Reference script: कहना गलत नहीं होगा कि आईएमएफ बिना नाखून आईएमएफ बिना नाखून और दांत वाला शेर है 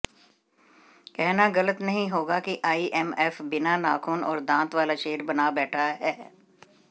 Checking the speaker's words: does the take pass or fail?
fail